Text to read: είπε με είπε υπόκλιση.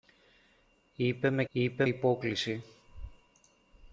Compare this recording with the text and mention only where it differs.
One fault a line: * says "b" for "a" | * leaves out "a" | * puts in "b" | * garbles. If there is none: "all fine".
all fine